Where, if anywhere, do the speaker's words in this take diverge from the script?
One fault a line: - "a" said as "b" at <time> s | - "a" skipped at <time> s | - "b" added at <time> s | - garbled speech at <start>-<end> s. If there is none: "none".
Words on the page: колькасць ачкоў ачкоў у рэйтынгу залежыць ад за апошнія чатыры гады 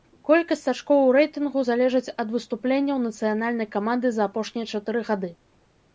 - "ачкоў" skipped at 1.0 s
- "выступленняў нацыянальнай каманды" added at 2.3 s